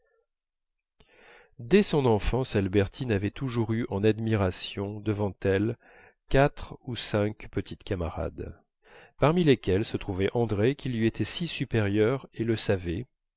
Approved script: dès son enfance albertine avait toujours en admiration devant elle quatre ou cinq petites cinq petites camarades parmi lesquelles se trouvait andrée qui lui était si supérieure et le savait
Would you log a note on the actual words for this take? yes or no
yes